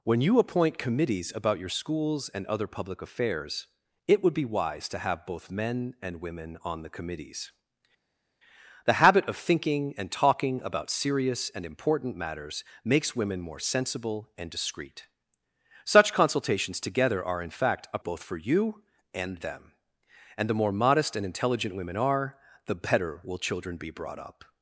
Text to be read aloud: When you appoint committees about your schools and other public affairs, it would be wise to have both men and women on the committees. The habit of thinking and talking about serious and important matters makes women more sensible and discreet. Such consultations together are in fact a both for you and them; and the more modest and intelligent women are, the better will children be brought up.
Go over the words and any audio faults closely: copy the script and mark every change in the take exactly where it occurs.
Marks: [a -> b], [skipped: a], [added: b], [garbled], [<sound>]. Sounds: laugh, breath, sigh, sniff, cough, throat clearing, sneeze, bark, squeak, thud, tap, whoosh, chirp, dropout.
When you appoint committees about your schools and other public affairs, it would be wise to have both men and women on the committees. The habit of thinking and talking about serious and important matters makes women more sensible and discreet. Such consultations together are in fact a both for you and them; and the more modest and intelligent women are, the better will children be brought up.